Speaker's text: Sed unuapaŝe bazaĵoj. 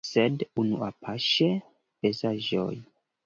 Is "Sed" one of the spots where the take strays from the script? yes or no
no